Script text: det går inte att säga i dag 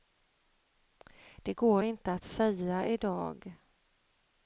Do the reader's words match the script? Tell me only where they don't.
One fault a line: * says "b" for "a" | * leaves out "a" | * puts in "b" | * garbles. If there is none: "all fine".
all fine